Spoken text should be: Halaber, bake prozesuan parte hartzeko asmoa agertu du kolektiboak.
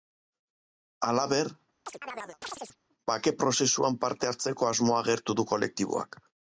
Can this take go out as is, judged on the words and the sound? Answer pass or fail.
fail